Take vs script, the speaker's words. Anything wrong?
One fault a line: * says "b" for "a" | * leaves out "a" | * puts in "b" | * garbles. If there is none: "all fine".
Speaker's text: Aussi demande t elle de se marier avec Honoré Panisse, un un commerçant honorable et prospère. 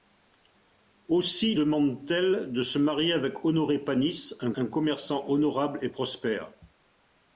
all fine